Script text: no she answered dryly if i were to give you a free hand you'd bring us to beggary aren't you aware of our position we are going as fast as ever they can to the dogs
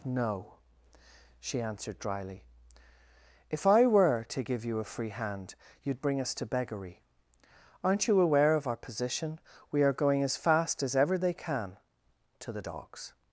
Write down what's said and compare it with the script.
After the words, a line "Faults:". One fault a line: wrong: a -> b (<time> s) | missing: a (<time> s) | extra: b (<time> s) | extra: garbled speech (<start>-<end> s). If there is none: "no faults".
no she answered dryly if i were to give you a free hand you'd bring us to beggary aren't you aware of our position we are going as fast as ever they can to the dogs
Faults:
no faults